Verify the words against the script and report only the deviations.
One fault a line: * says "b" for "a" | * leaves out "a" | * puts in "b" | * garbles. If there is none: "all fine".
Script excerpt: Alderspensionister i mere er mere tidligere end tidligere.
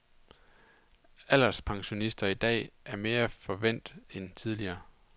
* says "dag" for "mere"
* says "forvænt" for "tidligere"